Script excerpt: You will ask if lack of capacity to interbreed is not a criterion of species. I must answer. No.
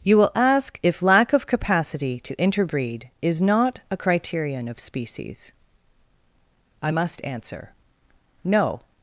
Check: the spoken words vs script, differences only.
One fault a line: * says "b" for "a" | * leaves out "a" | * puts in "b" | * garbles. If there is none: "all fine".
all fine